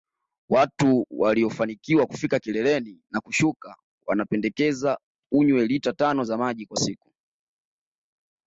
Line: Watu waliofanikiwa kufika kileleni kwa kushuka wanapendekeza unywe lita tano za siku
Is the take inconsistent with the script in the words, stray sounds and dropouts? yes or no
yes